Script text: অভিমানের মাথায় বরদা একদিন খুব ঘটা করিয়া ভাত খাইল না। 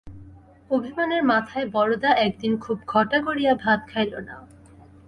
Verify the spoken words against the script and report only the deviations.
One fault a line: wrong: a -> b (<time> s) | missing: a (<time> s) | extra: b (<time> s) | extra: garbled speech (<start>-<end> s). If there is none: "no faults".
no faults